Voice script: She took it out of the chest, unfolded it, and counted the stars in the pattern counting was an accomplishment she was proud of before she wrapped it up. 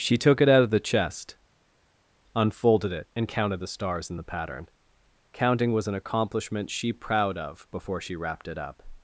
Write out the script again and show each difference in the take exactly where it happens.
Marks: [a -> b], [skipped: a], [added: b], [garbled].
She took it out of the chest, unfolded it, and counted the stars in the pattern counting was an accomplishment she [skipped: was] proud of before she wrapped it up.